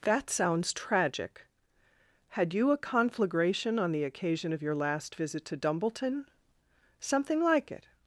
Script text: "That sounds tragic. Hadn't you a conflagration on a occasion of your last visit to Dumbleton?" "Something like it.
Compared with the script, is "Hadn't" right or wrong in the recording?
wrong